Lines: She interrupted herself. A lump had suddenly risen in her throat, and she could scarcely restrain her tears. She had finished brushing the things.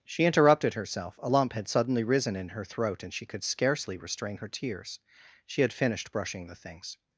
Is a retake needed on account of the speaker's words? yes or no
no